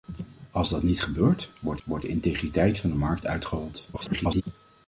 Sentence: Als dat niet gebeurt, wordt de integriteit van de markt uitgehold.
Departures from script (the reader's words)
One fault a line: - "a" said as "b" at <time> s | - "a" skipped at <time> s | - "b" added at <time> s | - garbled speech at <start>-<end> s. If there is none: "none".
- "wordt" added at 1.8 s
- garbled speech at 3.9-4.4 s